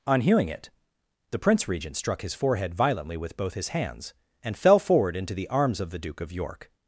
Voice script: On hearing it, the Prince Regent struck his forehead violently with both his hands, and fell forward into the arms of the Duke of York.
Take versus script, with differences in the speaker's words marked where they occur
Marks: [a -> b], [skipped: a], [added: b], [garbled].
On hearing it, the Prince Regent struck his forehead violently with both his hands, and fell forward into the arms of the Duke of York.